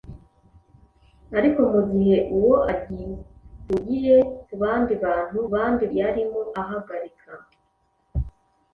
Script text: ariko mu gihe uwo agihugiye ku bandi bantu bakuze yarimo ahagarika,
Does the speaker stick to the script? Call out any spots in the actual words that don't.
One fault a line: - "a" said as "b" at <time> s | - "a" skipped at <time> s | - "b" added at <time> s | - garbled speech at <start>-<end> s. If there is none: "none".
- "bakuze" said as "bandi" at 5.5 s